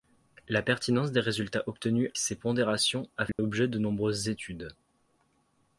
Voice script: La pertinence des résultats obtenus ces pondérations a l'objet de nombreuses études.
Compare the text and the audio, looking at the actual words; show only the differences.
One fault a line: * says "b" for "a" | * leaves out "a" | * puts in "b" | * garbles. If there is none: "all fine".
all fine